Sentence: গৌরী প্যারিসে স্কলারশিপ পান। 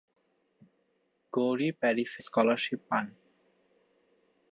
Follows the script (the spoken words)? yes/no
yes